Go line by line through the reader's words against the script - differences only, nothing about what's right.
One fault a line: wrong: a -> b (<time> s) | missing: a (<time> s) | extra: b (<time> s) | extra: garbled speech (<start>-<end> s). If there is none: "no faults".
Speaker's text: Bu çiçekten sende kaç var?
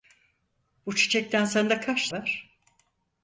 no faults